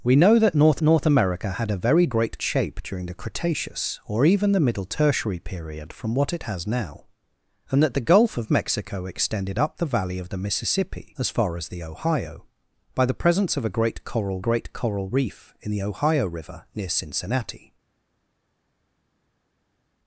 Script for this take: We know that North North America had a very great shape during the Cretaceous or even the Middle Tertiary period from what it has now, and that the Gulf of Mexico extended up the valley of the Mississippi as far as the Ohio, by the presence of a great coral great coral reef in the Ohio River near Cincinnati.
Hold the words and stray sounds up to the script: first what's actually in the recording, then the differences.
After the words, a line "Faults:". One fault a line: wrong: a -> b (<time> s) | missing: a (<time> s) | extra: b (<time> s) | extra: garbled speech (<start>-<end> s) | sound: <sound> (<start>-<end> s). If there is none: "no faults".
We know that North North America had a very great shape during the Cretaceous or even the Middle Tertiary period from what it has now, and that the Gulf of Mexico extended up the valley of the Mississippi as far as the Ohio, by the presence of a great coral great coral reef in the Ohio River near Cincinnati.
Faults:
no faults